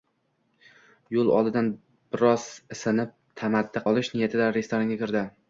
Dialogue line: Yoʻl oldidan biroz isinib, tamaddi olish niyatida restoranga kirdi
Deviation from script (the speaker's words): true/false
false